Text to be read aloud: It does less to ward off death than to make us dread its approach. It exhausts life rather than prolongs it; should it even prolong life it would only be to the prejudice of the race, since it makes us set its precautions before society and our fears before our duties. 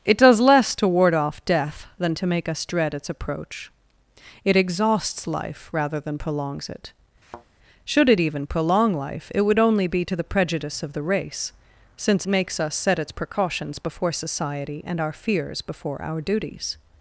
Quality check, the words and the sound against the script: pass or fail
fail